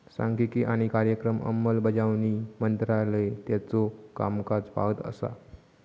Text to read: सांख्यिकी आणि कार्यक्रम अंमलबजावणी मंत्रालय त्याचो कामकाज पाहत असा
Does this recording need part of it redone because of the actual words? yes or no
no